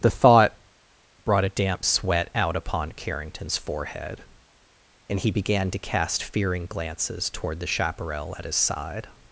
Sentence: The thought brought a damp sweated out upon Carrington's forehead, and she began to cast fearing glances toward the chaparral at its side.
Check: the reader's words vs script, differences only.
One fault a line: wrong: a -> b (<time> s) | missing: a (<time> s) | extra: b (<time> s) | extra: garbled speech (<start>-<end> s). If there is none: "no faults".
wrong: sweated -> sweat (1.8 s)
wrong: she -> he (5.2 s)
wrong: its -> his (8.4 s)